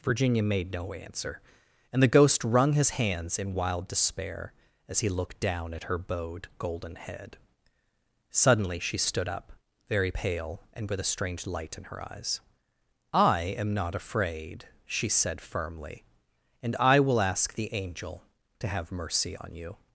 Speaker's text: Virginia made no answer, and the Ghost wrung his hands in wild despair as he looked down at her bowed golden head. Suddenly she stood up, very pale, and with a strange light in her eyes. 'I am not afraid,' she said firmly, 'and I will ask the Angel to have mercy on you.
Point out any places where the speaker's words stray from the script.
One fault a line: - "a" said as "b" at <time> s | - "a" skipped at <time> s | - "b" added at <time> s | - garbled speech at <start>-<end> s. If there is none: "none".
none